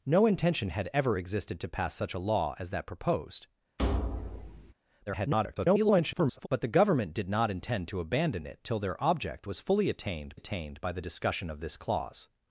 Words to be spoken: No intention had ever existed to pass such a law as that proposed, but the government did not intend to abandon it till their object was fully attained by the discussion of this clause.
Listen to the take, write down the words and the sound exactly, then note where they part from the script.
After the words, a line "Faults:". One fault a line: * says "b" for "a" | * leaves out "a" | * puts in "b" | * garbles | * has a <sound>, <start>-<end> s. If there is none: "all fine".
No intention had ever existed to pass such a law as that proposed, [garbled] but the government did not intend to abandon it till their object was fully attained attained by the discussion of this clause.
Faults:
* has a thud, 3.8-4.7 s
* garbles
* puts in "attained"